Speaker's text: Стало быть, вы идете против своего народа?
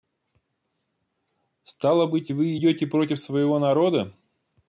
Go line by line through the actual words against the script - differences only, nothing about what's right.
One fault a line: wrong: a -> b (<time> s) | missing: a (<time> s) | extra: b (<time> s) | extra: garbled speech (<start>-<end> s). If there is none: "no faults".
no faults